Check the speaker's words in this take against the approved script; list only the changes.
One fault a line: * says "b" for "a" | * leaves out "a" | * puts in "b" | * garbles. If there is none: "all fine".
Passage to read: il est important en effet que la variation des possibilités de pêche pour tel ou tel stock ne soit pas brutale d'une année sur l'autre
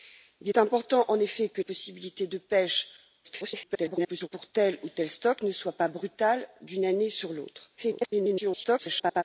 * leaves out "la variation des"
* garbles
* garbles